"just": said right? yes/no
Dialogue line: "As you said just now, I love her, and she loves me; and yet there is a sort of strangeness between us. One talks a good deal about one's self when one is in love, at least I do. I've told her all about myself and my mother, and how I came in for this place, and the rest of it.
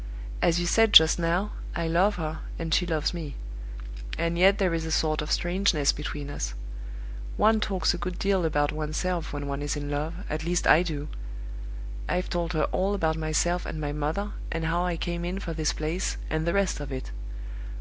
yes